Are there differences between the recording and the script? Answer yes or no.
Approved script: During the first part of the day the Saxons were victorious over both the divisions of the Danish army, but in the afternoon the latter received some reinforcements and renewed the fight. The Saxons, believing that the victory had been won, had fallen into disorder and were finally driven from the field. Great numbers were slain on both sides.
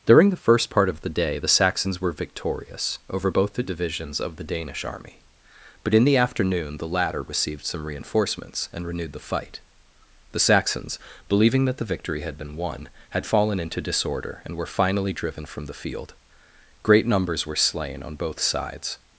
no